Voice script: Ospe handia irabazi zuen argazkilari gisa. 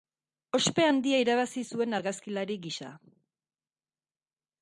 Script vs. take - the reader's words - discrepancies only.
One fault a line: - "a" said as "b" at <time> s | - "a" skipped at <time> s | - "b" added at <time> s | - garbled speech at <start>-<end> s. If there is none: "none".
none